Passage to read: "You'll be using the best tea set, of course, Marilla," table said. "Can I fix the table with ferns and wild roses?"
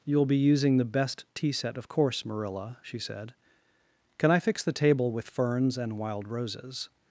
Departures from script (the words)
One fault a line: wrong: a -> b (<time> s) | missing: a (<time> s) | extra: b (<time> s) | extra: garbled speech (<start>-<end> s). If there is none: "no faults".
wrong: table -> she (2.8 s)